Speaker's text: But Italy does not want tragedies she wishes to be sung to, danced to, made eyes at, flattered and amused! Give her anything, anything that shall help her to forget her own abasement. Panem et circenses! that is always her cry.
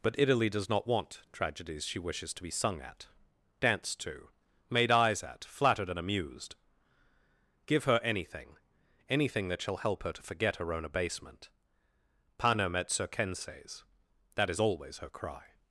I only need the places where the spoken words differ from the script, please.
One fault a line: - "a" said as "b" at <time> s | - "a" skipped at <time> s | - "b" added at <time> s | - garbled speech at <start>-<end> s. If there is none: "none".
- "to" said as "at" at 2.8 s